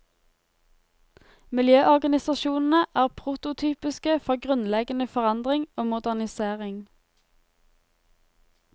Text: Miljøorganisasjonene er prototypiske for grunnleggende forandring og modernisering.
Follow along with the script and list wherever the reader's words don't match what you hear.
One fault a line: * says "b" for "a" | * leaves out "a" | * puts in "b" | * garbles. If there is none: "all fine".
all fine